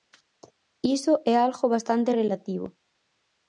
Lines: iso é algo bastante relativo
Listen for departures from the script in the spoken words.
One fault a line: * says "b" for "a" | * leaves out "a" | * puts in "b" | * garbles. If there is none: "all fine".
all fine